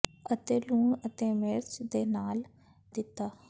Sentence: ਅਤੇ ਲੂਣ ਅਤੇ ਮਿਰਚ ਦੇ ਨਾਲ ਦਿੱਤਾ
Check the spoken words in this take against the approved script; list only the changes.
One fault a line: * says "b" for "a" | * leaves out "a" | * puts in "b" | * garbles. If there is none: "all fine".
all fine